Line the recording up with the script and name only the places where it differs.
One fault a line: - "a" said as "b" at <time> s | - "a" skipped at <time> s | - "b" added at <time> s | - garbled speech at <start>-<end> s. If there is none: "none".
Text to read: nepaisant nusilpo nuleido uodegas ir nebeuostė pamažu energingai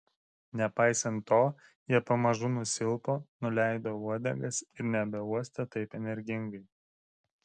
- "to jie pamažu" added at 1.3 s
- "pamažu" said as "taip" at 5.8 s